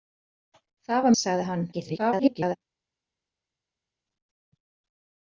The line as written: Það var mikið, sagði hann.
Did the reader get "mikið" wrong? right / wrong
wrong